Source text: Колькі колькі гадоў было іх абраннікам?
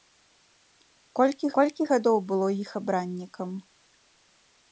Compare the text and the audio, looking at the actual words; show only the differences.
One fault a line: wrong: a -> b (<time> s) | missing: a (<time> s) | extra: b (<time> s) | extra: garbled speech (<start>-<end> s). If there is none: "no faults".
no faults